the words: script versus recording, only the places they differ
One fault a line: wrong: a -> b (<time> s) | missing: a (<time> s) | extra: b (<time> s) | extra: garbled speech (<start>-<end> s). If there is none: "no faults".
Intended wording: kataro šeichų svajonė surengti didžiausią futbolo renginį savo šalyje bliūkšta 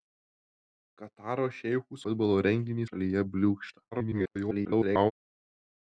missing: svajonė surengti didžiausią (2.0 s)
missing: savo (2.9 s)
extra: garbled speech (3.9-5.1 s)